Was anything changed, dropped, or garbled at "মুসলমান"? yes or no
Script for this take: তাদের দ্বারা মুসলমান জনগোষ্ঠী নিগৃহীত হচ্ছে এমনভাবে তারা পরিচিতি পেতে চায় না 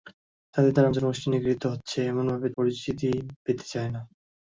yes